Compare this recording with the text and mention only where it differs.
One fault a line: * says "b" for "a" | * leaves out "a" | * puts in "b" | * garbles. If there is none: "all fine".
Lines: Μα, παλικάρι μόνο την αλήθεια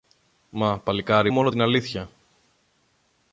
all fine